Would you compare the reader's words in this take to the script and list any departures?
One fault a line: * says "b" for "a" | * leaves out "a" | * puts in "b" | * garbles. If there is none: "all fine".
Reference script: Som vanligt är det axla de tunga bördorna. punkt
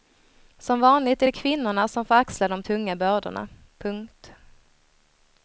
* puts in "kvinnorna som får"